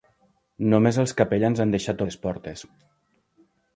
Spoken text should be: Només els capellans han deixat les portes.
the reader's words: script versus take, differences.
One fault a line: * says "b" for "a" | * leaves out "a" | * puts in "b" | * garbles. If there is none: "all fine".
all fine